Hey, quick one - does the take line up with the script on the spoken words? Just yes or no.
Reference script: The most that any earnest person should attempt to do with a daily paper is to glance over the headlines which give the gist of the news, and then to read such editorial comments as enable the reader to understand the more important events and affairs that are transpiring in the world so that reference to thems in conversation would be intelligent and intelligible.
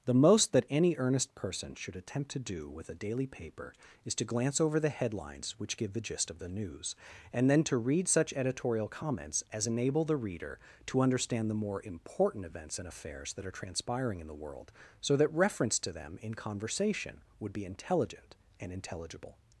no